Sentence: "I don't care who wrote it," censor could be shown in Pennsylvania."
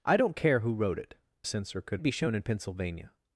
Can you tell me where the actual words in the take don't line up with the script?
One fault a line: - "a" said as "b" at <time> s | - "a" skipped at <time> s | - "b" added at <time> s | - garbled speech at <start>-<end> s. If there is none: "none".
none